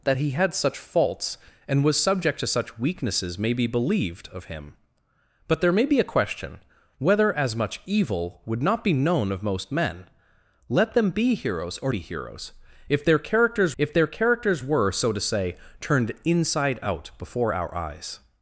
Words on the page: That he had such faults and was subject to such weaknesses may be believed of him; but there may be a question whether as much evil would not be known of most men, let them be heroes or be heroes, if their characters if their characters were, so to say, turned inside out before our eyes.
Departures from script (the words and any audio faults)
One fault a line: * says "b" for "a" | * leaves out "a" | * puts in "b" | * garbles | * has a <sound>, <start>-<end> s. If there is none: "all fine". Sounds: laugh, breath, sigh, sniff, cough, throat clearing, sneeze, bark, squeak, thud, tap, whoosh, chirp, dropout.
all fine